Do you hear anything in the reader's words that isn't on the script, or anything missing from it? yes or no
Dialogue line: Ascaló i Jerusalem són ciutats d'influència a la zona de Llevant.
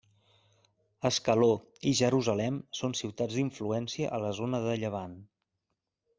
no